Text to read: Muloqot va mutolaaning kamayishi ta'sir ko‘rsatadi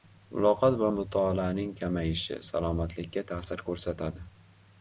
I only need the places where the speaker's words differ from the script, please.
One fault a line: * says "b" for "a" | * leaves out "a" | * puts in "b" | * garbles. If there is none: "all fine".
* puts in "salomatlikka"